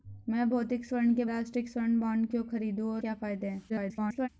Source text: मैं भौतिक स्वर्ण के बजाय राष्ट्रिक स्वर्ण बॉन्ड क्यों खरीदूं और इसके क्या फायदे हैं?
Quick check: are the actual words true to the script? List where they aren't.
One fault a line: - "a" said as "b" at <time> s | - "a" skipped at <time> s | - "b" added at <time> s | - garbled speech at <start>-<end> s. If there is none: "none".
- "बजाय" skipped at 1.2 s
- "इसके" skipped at 3.0 s
- garbled speech at 3.7-4.3 s